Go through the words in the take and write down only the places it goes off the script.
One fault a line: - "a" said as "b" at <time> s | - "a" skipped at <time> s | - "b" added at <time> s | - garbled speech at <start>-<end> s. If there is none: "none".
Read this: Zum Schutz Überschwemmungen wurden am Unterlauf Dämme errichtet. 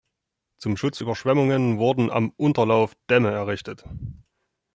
none